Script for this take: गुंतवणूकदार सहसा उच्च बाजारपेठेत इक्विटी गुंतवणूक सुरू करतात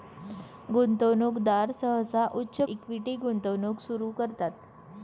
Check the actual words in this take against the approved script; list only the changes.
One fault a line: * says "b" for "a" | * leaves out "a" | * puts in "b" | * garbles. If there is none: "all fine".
* leaves out "बाजारपेठेत"